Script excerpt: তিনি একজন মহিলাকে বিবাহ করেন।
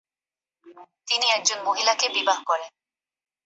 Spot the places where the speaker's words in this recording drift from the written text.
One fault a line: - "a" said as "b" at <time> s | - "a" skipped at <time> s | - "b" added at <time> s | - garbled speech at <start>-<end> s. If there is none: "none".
none